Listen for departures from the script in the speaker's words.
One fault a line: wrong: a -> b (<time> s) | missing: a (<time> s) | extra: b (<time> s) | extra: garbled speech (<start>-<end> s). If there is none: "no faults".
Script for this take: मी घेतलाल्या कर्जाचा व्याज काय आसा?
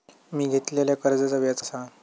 missing: काय (1.6 s)